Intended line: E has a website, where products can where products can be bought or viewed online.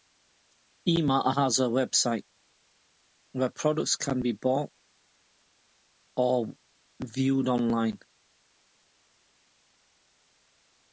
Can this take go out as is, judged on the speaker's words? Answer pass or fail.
fail